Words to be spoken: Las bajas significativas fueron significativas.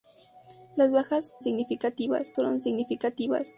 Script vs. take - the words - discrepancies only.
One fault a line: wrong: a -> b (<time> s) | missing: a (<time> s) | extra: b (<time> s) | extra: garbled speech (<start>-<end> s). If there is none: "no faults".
no faults